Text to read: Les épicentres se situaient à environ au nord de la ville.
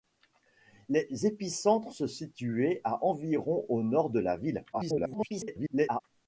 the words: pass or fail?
fail